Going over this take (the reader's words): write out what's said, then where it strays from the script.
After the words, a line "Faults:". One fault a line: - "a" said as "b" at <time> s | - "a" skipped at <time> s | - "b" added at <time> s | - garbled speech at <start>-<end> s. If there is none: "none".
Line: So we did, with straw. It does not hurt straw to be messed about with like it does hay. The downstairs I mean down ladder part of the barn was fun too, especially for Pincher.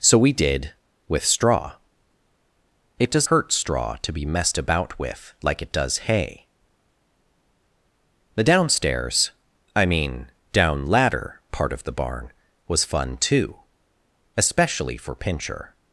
So we did, with straw. It does hurt straw to be messed about with like it does hay. The downstairs I mean down ladder part of the barn was fun too, especially for Pincher.
Faults:
- "not" skipped at 3.3 s